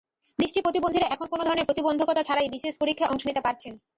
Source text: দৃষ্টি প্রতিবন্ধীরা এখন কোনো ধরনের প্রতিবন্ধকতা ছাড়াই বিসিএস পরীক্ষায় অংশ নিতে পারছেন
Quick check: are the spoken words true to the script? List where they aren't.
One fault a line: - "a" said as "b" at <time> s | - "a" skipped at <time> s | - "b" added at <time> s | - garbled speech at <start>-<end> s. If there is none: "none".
none